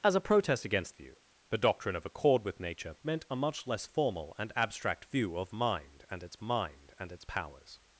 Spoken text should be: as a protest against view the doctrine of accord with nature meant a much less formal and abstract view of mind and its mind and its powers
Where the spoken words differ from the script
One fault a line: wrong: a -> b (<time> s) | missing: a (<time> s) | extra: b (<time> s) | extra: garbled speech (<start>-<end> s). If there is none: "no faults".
no faults